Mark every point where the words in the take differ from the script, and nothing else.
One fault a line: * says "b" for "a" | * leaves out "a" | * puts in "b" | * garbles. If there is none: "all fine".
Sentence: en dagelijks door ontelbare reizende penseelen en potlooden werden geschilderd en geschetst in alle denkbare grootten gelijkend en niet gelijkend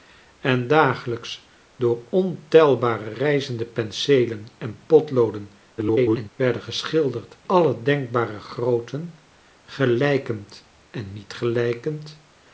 * garbles
* leaves out "en geschetst in"